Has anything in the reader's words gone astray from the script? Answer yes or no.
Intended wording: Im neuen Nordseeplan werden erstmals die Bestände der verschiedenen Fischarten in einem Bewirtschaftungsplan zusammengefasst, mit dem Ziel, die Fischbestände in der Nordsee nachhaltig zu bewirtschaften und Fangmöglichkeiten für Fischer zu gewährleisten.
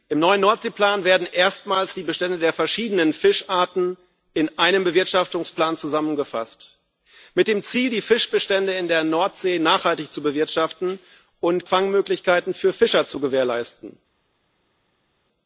no